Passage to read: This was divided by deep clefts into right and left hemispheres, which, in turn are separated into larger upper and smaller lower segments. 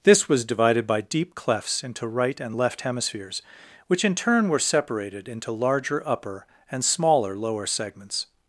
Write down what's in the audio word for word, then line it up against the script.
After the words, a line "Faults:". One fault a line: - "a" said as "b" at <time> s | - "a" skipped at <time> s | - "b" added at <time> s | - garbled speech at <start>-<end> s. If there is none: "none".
This was divided by deep clefts into right and left hemispheres, which, in turn were separated into larger upper and smaller lower segments.
Faults:
- "are" said as "were" at 4.5 s